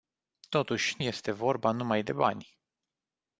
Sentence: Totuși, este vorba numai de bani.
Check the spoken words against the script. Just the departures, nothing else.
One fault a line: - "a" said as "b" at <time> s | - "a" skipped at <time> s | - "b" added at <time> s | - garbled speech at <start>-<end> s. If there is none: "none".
none